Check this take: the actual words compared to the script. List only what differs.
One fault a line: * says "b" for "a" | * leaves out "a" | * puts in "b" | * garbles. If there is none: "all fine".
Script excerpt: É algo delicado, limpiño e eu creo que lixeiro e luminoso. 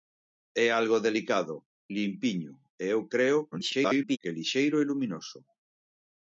* garbles